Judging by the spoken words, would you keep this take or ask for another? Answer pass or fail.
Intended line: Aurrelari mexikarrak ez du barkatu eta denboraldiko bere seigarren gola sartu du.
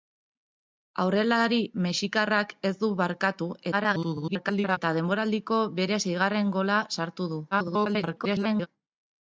fail